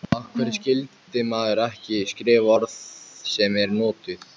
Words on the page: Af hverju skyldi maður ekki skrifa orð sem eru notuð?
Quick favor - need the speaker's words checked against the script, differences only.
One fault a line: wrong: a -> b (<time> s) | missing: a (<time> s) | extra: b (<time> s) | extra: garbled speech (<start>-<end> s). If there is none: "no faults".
no faults